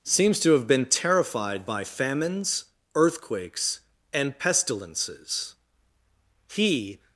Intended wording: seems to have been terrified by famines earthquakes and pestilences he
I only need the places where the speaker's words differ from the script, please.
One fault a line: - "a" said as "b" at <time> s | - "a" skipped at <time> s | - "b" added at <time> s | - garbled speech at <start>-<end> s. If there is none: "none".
none